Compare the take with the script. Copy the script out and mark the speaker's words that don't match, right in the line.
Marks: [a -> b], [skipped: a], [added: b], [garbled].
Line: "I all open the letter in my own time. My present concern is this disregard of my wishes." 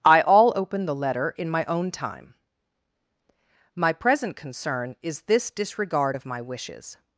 "I all open the letter in my own time. My present concern is this disregard of my wishes."